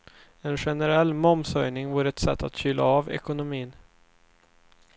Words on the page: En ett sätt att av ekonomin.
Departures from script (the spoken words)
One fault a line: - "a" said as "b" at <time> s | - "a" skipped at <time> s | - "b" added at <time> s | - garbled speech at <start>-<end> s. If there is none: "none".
- "generell momshöjning vore" added at 0.5 s
- "kyla" added at 2.6 s